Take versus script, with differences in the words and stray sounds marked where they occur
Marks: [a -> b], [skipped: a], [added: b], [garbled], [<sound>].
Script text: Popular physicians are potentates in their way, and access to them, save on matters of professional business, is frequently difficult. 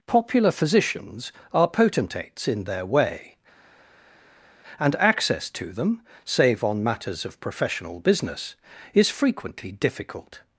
Popular physicians are potentates in their way, and access to them, save on matters of professional business, is frequently difficult.